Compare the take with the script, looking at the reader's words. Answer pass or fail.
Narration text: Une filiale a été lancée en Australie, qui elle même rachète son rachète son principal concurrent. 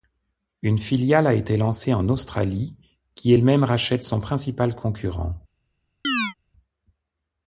fail